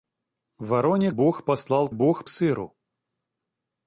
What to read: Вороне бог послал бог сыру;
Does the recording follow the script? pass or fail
pass